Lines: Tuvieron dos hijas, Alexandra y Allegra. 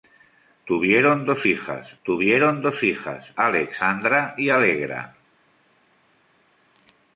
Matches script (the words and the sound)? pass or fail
fail